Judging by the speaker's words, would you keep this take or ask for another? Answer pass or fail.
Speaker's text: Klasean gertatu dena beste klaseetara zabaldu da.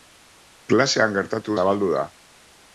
fail